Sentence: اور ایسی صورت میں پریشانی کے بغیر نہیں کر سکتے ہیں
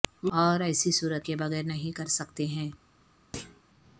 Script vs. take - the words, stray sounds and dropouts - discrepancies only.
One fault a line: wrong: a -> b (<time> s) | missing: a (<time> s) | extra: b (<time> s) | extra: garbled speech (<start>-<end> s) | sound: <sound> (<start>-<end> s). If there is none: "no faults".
missing: میں پریشانی (1.3 s)
sound: thud (3.3-3.6 s)